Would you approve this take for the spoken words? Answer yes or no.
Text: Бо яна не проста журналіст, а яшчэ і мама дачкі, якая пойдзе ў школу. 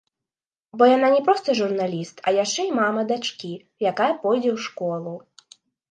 yes